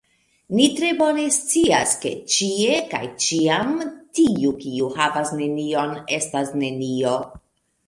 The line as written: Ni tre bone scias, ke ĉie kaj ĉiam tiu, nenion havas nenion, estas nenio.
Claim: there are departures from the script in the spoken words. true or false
true